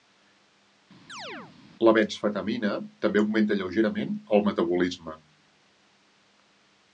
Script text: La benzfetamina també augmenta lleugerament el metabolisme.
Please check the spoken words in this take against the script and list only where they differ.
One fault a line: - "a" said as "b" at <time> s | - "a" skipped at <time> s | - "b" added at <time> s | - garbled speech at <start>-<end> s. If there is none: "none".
none